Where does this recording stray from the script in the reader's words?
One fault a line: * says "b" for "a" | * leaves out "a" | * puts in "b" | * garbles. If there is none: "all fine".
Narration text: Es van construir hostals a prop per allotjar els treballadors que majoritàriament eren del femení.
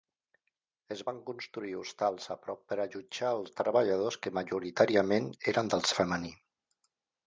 all fine